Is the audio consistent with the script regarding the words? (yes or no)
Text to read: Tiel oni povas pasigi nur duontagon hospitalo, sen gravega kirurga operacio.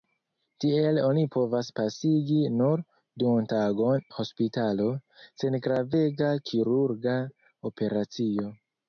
yes